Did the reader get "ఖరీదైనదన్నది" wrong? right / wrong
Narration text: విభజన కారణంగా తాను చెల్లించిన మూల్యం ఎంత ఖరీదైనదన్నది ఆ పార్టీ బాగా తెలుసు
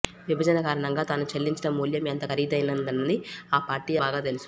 right